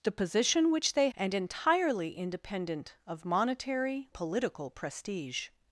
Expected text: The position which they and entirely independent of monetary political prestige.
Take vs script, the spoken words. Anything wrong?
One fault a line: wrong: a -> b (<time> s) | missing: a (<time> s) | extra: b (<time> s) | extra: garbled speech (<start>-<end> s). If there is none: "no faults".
no faults